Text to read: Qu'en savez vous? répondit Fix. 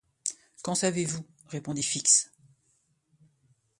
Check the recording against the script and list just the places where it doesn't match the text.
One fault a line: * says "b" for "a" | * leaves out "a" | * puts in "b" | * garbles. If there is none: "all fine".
all fine